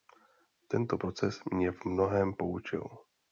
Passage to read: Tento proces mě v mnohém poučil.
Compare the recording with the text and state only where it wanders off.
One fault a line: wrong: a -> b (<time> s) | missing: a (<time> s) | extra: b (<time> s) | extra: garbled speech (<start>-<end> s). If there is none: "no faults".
no faults